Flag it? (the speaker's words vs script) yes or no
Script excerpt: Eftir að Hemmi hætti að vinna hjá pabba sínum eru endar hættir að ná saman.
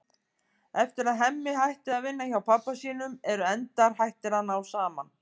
no